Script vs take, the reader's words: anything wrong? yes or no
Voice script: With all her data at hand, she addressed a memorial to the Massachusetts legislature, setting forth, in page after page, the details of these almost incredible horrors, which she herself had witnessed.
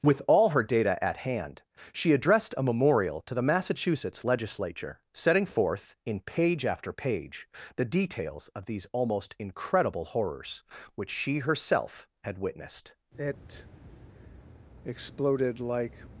yes